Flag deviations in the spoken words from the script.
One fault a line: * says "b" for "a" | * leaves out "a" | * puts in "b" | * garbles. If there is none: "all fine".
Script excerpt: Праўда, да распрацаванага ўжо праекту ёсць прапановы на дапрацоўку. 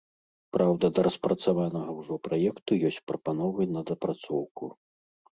all fine